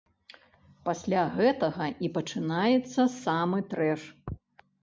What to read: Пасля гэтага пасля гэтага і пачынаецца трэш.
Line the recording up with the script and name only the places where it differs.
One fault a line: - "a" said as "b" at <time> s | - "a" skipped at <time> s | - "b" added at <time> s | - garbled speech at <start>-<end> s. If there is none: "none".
- "пасля гэтага" skipped at 1.9 s
- "самы" added at 3.2 s